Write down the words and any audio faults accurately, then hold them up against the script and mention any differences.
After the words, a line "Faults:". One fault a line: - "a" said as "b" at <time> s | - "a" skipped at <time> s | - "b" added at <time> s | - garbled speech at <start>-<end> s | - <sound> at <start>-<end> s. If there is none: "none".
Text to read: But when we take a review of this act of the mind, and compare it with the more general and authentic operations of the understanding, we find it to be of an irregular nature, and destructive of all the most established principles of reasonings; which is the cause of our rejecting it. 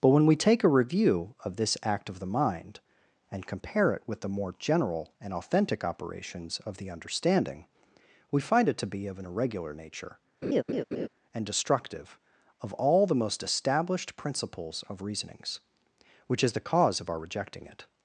But when we take a review of this act of the mind, and compare it with the more general and authentic operations of the understanding, we find it to be of an irregular nature, and destructive of all the most established principles of reasonings; which is the cause of our rejecting it.
Faults:
- laugh at 10.4-11.1 s